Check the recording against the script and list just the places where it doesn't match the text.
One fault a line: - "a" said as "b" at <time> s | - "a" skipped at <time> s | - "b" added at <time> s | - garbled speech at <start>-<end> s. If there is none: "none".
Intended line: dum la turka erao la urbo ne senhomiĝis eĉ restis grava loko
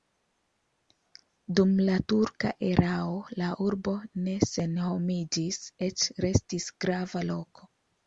none